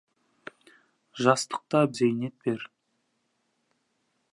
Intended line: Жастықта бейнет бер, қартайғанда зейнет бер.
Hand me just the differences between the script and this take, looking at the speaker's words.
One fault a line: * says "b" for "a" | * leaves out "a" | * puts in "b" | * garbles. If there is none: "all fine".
* leaves out "бейнет бер қартайғанда"